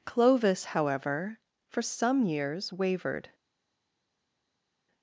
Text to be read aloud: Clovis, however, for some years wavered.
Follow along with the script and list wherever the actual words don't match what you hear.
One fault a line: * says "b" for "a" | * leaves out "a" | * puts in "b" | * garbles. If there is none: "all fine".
all fine